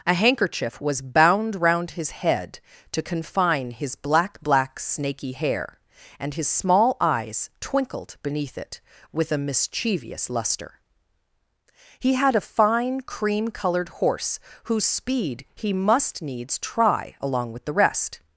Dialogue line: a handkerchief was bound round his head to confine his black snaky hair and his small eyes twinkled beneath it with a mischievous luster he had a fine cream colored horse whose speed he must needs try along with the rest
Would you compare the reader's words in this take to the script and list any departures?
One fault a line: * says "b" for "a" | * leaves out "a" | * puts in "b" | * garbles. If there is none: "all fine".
* puts in "black"